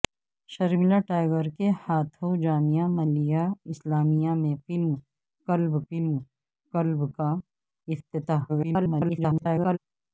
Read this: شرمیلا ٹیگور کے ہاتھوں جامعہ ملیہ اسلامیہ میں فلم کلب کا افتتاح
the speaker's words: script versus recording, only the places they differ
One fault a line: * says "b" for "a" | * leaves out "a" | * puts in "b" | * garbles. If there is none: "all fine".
* puts in "فلم کلب"
* garbles